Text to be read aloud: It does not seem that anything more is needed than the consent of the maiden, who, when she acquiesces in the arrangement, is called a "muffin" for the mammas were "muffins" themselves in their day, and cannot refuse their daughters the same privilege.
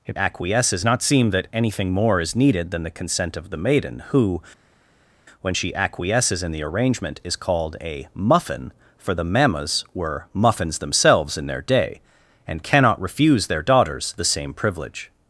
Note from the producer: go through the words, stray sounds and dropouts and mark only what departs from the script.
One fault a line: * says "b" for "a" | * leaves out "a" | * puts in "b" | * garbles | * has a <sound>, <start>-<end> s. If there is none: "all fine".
* says "acquiesces" for "does"